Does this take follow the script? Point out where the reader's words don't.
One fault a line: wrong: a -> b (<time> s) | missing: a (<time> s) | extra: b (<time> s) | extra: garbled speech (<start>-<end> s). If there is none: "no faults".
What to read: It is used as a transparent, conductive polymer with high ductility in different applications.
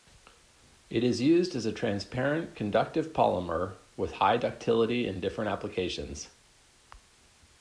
no faults